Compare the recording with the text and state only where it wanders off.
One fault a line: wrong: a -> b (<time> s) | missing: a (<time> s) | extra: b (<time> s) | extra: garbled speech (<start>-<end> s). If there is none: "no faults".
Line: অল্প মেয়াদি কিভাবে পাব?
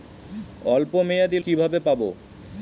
no faults